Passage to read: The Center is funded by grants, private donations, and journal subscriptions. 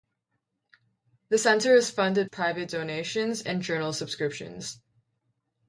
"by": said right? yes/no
no